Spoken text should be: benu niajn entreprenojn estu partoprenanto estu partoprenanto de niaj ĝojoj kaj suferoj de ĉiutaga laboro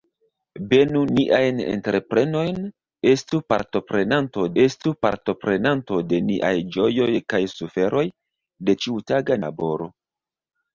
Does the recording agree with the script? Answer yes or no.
yes